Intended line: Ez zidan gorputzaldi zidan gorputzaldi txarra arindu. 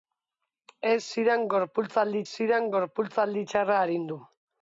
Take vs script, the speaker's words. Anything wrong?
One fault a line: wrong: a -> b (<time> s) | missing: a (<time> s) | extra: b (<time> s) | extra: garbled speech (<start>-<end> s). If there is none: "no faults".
no faults